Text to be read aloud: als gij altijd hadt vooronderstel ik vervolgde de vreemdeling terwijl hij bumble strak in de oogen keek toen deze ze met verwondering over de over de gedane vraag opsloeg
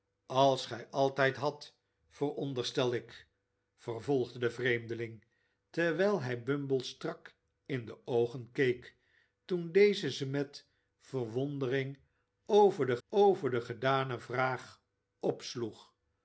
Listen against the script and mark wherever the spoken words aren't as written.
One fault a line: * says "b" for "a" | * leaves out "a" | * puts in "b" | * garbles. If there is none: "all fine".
all fine